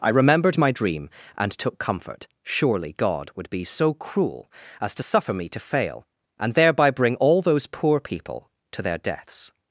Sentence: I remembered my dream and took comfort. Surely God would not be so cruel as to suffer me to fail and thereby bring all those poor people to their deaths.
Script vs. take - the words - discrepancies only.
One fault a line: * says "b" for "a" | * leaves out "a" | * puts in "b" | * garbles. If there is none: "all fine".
* leaves out "not"